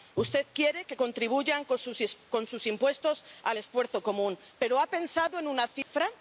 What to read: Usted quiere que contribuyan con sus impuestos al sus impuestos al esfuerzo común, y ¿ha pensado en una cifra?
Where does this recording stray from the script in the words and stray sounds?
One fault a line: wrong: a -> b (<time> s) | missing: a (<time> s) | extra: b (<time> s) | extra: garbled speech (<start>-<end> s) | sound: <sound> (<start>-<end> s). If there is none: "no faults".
missing: sus impuestos al (3.6 s)
wrong: y -> pero (4.6 s)
sound: dropout (5.8-5.9 s)